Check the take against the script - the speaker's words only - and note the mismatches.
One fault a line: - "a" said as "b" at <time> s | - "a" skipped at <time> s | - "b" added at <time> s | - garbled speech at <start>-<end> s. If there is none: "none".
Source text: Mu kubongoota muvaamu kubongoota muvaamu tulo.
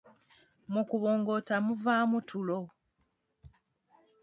- "kubongoota muvaamu" skipped at 2.2 s